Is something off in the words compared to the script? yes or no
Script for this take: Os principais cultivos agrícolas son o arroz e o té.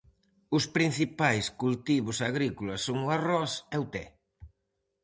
no